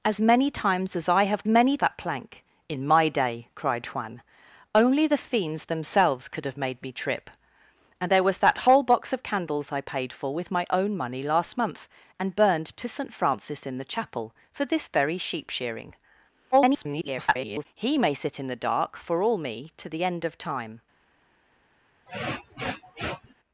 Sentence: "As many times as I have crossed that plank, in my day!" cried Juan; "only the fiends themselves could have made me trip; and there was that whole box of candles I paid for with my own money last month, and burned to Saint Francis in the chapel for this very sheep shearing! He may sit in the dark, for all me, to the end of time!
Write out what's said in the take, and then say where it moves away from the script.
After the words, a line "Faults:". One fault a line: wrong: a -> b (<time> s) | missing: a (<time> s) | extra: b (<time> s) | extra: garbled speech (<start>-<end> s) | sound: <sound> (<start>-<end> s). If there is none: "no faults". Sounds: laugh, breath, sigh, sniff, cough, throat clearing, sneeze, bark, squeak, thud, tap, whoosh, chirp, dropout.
"As many times as I have many that plank, in my day!" cried Juan; "only the fiends themselves could have made me trip; and there was that whole box of candles I paid for with my own money last month, and burned to Saint Francis in the chapel for this very sheep shearing! [garbled] He may sit in the dark, for all me, to the end of time!
Faults:
wrong: crossed -> many (1.5 s)
extra: garbled speech (16.5-17.7 s)
sound: sniff (22.1-23.3 s)